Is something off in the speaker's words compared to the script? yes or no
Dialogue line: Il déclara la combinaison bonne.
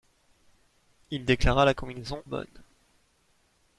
no